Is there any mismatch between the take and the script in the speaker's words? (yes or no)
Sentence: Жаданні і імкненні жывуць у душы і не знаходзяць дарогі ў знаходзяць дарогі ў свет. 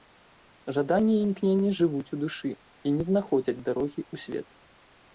yes